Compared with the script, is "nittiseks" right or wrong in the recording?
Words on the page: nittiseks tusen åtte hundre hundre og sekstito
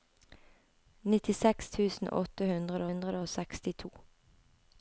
right